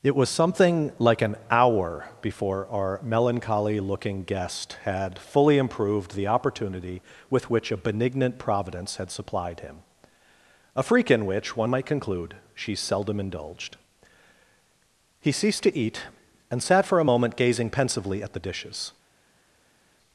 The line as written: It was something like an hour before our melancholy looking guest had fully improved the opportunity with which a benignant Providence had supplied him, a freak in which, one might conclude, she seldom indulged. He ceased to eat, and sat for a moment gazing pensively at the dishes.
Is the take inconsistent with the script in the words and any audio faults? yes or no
no